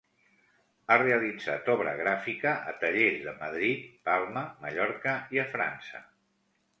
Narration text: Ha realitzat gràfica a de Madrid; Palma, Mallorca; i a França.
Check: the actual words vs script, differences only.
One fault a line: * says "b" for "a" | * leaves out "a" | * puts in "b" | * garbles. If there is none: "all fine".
* puts in "obra"
* puts in "tallers"